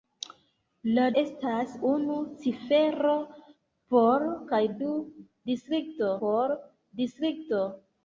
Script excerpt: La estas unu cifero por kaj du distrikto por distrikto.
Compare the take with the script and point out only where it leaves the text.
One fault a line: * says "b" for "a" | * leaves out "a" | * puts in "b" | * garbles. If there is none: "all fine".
all fine